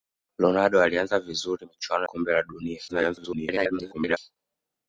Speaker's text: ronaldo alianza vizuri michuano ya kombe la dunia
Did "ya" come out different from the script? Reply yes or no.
yes